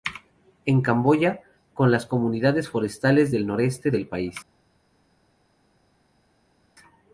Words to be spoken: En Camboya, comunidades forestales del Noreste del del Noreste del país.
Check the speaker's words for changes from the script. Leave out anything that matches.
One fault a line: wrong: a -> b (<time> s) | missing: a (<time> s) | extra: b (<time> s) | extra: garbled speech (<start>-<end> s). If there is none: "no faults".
extra: con las (1.8 s)
missing: del Noreste del (4.1 s)